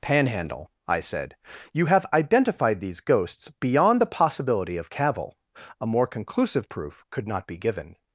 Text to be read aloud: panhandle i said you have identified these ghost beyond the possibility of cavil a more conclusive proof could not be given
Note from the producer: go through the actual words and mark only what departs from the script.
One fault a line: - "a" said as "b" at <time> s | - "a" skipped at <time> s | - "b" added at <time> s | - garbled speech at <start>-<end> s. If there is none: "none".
- "ghost" said as "ghosts" at 3.0 s